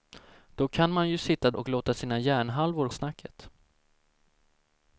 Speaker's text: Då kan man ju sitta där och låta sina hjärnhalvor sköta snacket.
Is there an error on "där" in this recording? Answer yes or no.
yes